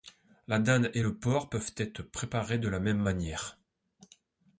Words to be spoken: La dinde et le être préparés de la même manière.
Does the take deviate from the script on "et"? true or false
false